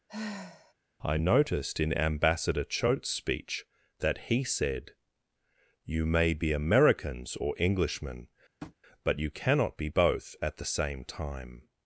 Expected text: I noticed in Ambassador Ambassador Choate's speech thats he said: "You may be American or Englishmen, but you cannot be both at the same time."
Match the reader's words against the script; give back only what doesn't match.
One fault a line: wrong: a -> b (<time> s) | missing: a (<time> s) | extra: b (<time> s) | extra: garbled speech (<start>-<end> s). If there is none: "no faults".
missing: Ambassador (2.6 s)
wrong: thats -> that (4.0 s)
wrong: American -> Americans (6.5 s)